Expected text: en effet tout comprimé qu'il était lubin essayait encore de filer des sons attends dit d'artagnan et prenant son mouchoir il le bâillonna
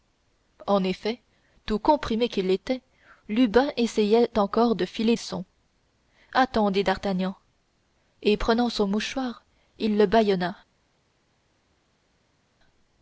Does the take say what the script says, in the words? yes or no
no